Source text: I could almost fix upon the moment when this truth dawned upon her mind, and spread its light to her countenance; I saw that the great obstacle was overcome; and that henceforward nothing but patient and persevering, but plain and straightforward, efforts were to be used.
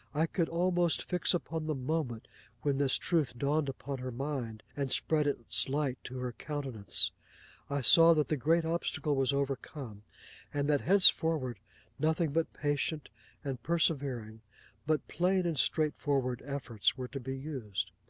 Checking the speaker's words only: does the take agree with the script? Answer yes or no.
yes